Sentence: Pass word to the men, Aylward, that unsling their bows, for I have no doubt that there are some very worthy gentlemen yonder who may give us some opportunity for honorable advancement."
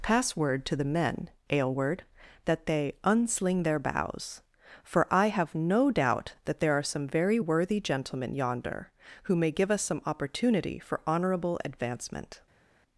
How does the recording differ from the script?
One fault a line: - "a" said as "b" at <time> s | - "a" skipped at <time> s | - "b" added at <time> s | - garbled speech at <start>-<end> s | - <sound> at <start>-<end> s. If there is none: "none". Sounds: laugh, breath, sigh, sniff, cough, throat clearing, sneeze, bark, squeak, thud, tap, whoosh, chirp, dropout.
- "they" added at 2.6 s